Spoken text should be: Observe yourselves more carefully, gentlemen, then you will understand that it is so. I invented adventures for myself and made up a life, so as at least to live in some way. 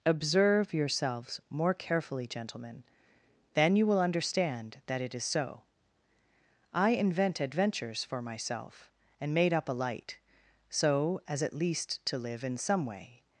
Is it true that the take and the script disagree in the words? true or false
true